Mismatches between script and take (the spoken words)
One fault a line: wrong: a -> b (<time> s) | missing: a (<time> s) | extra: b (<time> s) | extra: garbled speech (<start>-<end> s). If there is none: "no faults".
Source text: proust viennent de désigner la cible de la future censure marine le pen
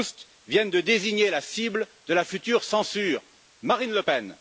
no faults